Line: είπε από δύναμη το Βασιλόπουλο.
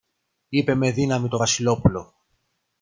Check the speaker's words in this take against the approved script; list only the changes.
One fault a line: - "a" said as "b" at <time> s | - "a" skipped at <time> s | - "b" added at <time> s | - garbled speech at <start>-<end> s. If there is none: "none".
- "από" said as "με" at 0.8 s